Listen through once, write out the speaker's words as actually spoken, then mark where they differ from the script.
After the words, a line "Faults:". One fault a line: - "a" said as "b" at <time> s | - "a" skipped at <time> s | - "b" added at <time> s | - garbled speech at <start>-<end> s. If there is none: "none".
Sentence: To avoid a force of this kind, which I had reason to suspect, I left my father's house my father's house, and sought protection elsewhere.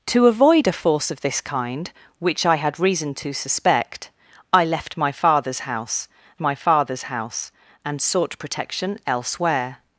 To avoid a force of this kind, which I had reason to suspect, I left my father's house my father's house, and sought protection elsewhere.
Faults:
none